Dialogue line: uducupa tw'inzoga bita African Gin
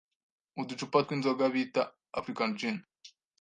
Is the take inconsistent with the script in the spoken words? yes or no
no